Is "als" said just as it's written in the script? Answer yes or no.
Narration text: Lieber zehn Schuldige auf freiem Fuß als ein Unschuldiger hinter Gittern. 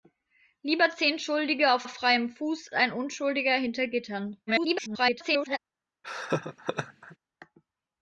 no